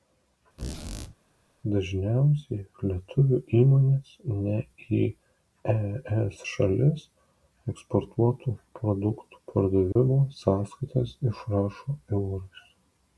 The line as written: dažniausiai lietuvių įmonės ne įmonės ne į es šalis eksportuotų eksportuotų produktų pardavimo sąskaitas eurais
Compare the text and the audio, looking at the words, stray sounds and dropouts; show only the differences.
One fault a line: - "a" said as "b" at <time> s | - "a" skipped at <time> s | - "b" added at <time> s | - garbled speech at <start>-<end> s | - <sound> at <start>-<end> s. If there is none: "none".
- squeak at 0.6-1.1 s
- "įmonės ne" skipped at 4.6 s
- "eksportuotų" skipped at 8.5 s
- dropout at 9.9-10.0 s
- "išrašo" added at 11.3 s